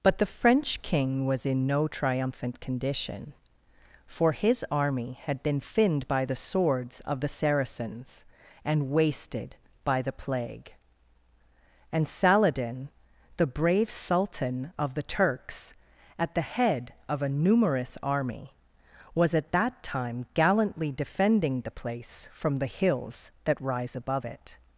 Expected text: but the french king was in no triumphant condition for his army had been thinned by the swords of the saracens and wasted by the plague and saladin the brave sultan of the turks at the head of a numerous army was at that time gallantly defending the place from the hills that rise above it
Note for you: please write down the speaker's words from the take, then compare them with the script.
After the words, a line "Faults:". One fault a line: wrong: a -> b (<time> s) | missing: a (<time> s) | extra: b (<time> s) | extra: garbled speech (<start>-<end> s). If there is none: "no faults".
but the french king was in no triumphant condition for his army had been thinned by the swords of the saracens and wasted by the plague and saladin the brave sultan of the turks at the head of a numerous army was at that time gallantly defending the place from the hills that rise above it
Faults:
no faults